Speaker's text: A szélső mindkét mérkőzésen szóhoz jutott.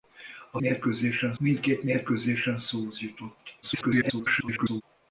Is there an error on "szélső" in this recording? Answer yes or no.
yes